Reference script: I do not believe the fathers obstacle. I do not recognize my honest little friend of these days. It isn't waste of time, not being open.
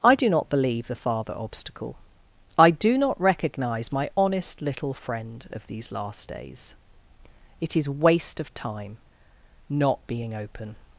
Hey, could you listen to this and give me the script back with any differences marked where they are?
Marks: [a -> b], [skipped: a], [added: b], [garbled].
I do not believe the [fathers -> father] obstacle. I do not recognize my honest little friend of these [added: last] days. It [isn't -> is] waste of time, not being open.